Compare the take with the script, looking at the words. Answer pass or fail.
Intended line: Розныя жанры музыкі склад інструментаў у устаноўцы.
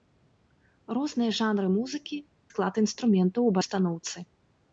pass